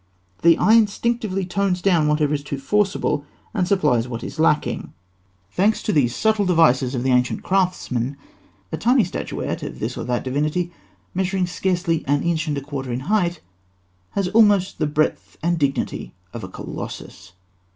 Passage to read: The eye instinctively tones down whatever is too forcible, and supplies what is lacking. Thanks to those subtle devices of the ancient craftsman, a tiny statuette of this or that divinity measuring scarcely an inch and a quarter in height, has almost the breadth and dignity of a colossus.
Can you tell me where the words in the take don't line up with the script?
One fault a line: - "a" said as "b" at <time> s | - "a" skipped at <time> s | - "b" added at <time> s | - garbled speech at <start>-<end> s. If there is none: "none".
- "those" said as "these" at 5.9 s